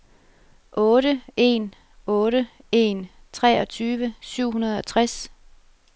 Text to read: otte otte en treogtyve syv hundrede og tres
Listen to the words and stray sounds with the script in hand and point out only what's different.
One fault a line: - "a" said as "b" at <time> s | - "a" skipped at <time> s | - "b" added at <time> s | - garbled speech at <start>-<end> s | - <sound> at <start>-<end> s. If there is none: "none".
- "en" added at 1.4 s